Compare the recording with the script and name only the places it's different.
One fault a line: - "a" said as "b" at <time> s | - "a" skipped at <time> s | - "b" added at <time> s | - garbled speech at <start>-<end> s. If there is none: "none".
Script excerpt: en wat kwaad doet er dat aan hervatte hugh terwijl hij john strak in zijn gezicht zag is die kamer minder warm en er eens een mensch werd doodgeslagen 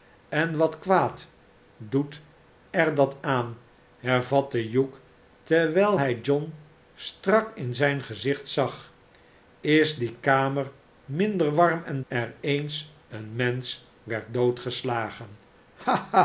none